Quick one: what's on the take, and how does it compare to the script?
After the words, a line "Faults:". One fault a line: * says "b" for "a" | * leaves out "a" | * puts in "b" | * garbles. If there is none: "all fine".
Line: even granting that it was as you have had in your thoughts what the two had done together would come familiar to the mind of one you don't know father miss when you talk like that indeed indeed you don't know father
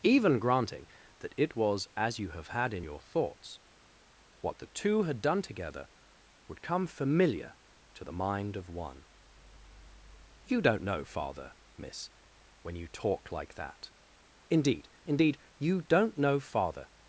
even granting that it was as you have had in your thoughts what the two had done together would come familiar to the mind of one you don't know father miss when you talk like that indeed indeed you don't know father
Faults:
all fine